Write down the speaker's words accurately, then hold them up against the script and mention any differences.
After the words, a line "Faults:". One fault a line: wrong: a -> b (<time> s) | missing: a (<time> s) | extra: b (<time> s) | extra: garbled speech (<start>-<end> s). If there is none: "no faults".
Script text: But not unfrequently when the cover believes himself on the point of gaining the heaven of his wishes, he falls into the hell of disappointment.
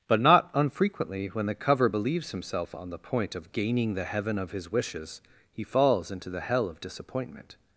But not unfrequently when the cover believes himself on the point of gaining the heaven of his wishes, he falls into the hell of disappointment.
Faults:
no faults